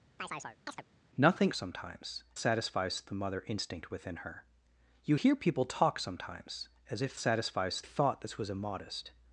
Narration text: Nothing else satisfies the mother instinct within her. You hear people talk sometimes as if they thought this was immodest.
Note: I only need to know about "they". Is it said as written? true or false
false